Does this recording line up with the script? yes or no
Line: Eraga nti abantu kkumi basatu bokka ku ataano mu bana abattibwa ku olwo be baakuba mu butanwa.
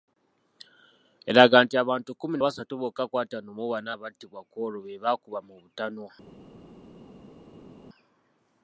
yes